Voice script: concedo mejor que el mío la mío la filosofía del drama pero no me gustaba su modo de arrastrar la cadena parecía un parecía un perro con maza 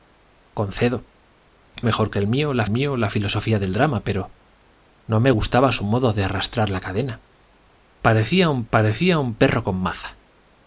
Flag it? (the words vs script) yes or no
no